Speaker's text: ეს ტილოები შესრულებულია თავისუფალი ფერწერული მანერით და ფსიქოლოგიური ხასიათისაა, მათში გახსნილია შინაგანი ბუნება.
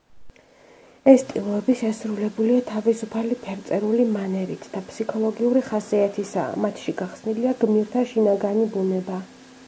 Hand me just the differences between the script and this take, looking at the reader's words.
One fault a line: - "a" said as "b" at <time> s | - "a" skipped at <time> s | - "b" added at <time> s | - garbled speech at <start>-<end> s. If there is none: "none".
- "გმირთა" added at 7.7 s